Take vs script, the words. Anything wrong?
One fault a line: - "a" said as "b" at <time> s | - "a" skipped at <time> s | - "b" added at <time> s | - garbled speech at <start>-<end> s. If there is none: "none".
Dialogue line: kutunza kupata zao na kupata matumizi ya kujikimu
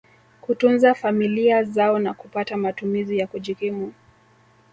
- "kupata" said as "familia" at 0.9 s